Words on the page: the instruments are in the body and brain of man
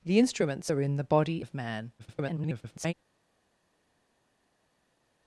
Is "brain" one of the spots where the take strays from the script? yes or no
yes